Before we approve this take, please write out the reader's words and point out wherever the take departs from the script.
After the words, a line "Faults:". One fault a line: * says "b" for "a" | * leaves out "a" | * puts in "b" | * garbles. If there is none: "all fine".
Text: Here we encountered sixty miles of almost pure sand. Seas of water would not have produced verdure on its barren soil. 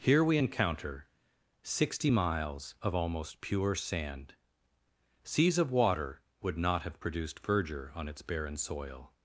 Here we encounter sixty miles of almost pure sand. Seas of water would not have produced verdure on its barren soil.
Faults:
* says "encounter" for "encountered"